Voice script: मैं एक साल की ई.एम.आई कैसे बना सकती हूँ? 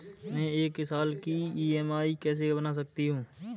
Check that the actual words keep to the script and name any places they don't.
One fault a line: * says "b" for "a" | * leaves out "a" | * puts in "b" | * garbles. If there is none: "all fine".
all fine